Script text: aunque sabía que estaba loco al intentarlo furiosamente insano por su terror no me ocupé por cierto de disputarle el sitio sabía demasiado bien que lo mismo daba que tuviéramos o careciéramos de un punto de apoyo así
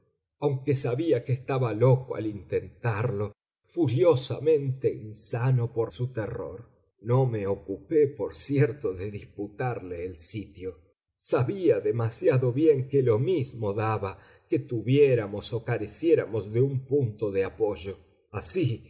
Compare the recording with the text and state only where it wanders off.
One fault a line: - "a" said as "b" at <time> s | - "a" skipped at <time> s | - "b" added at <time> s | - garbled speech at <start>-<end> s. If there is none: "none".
none